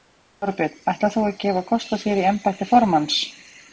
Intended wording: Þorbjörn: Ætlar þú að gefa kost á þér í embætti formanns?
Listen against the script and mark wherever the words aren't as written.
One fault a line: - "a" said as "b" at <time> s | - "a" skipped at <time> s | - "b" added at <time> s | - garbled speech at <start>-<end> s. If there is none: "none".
none